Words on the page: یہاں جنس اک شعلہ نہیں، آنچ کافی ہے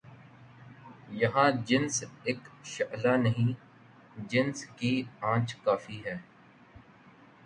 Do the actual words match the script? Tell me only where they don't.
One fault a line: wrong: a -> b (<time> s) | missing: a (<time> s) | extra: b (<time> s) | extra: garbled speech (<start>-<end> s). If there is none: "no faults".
extra: جنس کی (4.3 s)